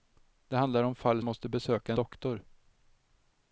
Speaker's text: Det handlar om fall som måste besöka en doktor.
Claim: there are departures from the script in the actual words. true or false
true